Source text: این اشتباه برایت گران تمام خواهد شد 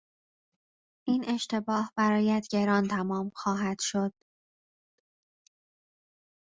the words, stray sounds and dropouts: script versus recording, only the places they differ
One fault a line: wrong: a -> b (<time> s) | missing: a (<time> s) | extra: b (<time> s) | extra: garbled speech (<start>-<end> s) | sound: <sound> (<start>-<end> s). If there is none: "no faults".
no faults